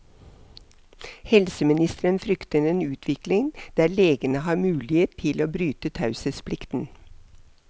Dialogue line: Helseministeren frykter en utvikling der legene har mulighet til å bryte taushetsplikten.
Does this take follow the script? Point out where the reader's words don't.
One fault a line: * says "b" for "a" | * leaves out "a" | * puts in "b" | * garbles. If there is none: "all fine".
all fine